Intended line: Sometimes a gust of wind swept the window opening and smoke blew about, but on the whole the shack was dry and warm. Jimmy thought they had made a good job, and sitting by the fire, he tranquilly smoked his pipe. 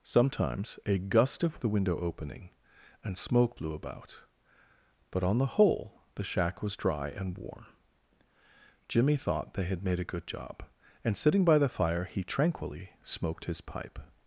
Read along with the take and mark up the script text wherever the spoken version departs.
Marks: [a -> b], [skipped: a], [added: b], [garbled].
Sometimes a gust of [skipped: wind swept] the window opening and smoke blew about, but on the whole the shack was dry and warm. Jimmy thought they had made a good job, and sitting by the fire, he tranquilly smoked his pipe.